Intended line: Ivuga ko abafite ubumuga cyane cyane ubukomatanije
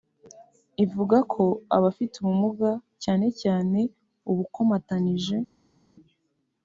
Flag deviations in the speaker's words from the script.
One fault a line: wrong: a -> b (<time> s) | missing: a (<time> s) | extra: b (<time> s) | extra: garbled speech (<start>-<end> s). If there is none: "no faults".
no faults